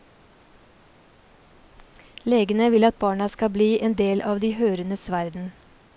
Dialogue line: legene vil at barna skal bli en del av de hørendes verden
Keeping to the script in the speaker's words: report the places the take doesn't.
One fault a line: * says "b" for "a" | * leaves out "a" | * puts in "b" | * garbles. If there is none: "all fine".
all fine